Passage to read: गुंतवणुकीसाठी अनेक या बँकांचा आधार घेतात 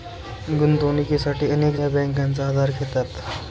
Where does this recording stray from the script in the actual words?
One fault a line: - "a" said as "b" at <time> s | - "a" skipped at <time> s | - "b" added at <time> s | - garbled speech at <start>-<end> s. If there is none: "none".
none